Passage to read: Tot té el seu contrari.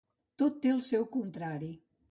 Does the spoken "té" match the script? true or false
true